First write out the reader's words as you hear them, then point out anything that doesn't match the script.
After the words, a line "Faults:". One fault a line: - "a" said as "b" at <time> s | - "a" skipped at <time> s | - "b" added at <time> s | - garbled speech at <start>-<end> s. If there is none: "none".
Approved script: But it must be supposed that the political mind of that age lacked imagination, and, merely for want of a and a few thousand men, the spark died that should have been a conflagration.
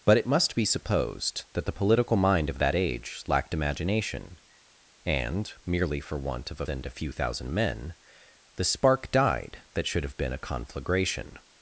But it must be supposed that the political mind of that age lacked imagination, and, merely for want of a and a few thousand men, the spark died that should have been a conflagration.
Faults:
none